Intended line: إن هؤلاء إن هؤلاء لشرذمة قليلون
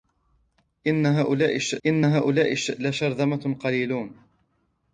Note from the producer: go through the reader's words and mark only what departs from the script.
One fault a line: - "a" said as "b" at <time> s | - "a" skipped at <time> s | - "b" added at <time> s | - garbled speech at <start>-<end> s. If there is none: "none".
none